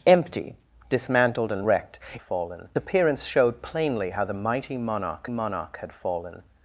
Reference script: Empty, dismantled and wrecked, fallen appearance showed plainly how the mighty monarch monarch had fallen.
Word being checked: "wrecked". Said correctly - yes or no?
yes